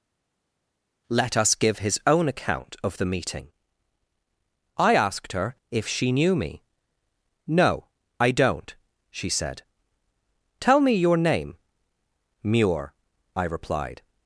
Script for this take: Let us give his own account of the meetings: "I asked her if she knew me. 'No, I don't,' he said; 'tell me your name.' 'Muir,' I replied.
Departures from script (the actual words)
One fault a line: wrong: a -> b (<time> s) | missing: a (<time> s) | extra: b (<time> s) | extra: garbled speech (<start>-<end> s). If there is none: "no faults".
wrong: meetings -> meeting (3.0 s)
wrong: he -> she (9.1 s)